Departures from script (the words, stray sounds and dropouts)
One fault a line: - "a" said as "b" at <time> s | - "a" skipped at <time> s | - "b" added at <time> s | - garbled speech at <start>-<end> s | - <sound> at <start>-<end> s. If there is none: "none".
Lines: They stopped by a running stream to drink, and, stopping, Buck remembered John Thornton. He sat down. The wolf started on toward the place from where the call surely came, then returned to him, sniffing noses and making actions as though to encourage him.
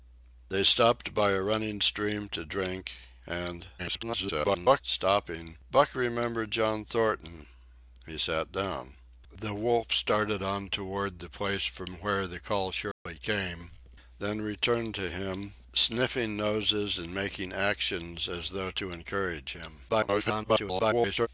- garbled speech at 3.8-4.8 s
- dropout at 12.9-13.1 s
- garbled speech at 19.9-21.3 s